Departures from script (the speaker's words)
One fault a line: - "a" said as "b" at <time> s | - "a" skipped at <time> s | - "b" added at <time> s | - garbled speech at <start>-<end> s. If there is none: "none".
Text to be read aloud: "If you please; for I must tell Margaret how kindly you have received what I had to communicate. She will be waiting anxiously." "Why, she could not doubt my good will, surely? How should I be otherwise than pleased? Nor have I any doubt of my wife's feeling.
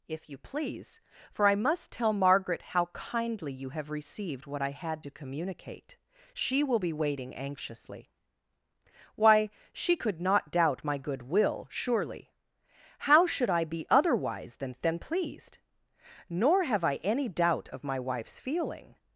- "than" added at 14.8 s